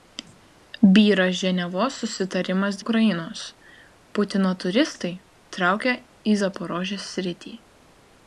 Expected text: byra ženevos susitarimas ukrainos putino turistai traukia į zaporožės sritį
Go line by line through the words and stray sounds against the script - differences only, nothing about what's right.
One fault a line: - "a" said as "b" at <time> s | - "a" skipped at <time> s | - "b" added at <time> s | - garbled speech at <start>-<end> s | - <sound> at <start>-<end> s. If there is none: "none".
none